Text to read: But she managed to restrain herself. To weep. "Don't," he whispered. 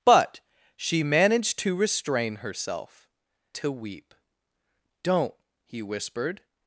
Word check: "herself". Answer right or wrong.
right